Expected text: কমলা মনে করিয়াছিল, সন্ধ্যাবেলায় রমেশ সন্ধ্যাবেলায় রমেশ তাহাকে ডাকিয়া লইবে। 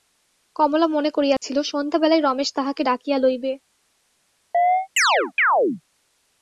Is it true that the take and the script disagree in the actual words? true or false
true